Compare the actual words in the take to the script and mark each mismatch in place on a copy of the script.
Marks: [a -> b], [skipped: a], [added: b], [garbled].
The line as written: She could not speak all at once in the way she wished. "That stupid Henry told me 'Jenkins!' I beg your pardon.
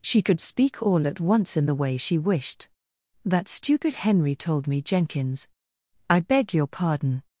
She could [skipped: not] speak all at once in the way she wished. "That stupid Henry told me 'Jenkins!' I beg your pardon.